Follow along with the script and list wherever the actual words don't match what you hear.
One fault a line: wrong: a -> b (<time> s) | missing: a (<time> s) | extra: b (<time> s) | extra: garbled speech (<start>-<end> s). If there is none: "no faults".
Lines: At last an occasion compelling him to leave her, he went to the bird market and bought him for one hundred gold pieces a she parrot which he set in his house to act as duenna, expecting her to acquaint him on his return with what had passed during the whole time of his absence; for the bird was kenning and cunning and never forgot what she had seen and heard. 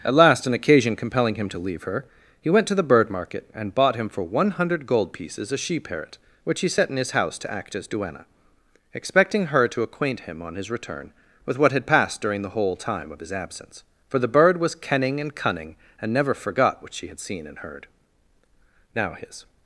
extra: Now his (18.9 s)